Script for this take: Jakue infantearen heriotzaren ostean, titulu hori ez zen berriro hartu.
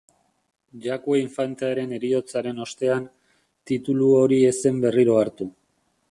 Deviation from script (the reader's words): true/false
false